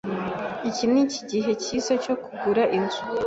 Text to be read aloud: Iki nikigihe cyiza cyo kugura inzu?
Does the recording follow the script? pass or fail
pass